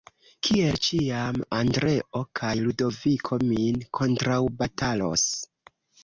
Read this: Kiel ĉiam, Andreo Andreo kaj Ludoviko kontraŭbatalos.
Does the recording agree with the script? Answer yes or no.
no